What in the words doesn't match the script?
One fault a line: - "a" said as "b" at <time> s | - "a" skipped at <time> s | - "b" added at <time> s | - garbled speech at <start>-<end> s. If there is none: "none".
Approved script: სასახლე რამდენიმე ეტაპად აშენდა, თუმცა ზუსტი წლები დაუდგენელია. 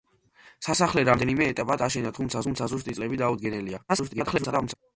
- "თუმცა" added at 2.5 s
- garbled speech at 3.9-4.7 s